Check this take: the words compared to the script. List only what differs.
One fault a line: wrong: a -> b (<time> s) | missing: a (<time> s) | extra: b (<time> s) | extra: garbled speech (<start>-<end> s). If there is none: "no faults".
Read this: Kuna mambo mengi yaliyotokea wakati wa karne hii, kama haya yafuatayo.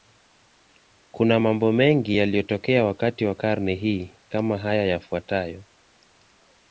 no faults